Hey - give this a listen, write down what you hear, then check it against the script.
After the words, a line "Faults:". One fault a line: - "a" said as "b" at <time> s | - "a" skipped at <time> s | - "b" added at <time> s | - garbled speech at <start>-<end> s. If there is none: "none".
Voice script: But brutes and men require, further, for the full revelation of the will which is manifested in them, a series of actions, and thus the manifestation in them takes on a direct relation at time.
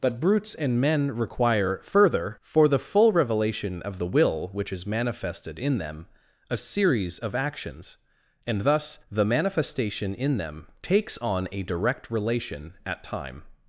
But brutes and men require, further, for the full revelation of the will which is manifested in them, a series of actions, and thus the manifestation in them takes on a direct relation at time.
Faults:
none